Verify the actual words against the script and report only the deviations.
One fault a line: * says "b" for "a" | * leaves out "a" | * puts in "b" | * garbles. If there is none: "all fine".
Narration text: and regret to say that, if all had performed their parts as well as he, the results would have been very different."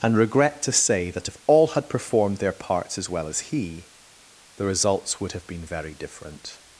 all fine